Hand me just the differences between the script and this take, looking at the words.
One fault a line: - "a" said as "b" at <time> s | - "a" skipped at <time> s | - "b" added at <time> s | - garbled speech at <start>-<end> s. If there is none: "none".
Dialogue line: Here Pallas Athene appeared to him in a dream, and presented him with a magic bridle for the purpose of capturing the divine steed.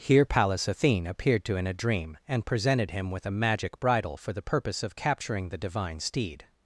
- "him" skipped at 1.6 s